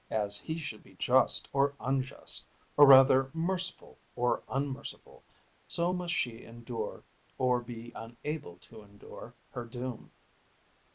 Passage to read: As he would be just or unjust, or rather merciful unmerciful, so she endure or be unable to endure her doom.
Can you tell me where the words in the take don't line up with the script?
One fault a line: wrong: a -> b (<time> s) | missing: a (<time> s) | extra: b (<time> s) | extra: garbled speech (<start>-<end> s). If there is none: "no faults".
wrong: would -> should (0.6 s)
extra: or (4.2 s)
extra: must (5.9 s)